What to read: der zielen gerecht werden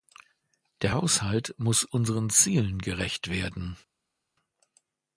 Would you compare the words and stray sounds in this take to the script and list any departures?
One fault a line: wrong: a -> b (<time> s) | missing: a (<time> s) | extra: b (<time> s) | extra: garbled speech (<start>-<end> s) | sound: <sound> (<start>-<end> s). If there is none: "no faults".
extra: haushalt muss unseren (0.9 s)